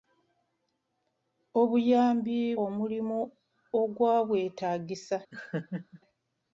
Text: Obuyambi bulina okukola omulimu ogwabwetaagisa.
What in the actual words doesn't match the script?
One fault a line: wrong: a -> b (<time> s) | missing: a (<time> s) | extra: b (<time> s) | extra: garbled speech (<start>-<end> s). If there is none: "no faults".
missing: bulina okukola (2.4 s)